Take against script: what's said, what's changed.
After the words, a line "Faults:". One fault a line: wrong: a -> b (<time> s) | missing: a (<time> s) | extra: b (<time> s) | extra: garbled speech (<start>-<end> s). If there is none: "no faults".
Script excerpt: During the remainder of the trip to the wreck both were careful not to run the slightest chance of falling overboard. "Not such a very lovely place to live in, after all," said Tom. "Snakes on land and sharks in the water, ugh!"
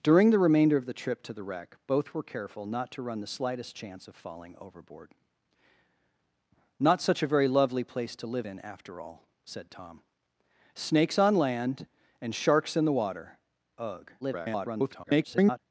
During the remainder of the trip to the wreck both were careful not to run the slightest chance of falling overboard. "Not such a very lovely place to live in, after all," said Tom. "Snakes on land and sharks in the water, ugh!" [garbled]
Faults:
extra: garbled speech (14.2-15.6 s)